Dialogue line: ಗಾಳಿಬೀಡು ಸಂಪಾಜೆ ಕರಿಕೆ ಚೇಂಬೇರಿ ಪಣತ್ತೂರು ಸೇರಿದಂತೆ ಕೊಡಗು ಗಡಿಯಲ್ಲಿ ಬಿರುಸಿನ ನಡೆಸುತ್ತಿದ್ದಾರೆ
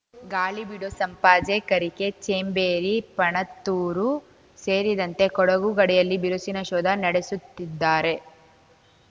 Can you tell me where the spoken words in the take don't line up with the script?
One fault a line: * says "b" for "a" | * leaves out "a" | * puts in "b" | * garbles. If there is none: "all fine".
* puts in "ಶೋಧ"